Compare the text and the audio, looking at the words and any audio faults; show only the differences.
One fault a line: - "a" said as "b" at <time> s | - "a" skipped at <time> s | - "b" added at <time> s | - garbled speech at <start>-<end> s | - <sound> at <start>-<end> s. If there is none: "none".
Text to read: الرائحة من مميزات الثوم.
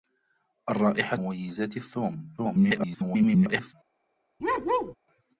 - "من" skipped at 1.2 s
- garbled speech at 2.4-3.7 s
- bark at 4.4-4.9 s